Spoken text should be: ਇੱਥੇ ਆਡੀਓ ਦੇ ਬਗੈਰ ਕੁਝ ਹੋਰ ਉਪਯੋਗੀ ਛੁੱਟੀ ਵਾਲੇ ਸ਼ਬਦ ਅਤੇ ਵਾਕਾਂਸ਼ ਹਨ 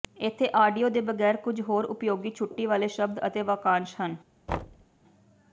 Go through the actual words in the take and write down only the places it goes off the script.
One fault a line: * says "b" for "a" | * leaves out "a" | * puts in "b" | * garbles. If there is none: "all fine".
all fine